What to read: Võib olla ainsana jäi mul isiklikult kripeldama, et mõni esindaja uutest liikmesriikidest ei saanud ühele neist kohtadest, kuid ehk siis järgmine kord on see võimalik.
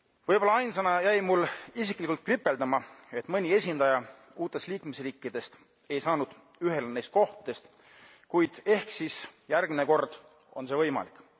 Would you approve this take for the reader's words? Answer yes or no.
yes